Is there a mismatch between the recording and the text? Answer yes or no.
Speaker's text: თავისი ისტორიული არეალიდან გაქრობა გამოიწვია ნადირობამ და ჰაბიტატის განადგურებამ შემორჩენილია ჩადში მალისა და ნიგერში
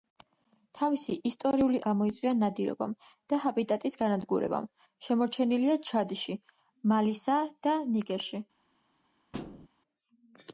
yes